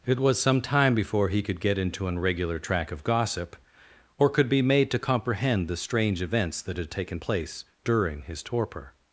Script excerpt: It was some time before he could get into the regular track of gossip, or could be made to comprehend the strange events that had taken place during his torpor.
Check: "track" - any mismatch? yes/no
no